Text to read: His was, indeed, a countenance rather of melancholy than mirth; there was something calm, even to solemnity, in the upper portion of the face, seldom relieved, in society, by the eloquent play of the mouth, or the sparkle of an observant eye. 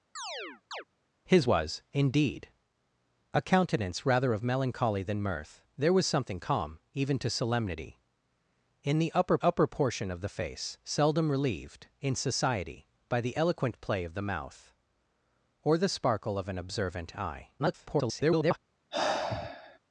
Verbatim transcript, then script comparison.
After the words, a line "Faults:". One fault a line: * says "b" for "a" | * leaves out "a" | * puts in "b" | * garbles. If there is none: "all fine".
His was, indeed, a countenance rather of melancholy than mirth; there was something calm, even to solemnity, in the upper upper portion of the face, seldom relieved, in society, by the eloquent play of the mouth, or the sparkle of an observant eye. [garbled]
Faults:
* puts in "upper"
* garbles